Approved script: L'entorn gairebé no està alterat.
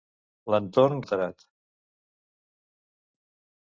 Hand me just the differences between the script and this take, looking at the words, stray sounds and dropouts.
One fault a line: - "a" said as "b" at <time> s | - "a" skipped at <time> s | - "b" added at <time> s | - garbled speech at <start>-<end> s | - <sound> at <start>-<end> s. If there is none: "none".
- "gairebé no està" skipped at 1.0 s